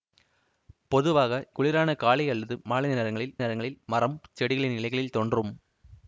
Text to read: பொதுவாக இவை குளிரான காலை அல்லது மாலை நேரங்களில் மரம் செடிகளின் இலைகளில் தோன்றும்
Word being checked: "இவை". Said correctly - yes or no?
no